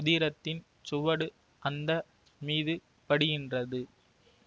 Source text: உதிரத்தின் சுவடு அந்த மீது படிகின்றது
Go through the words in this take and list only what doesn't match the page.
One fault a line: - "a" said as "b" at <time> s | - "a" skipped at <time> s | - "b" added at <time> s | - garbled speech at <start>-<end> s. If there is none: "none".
none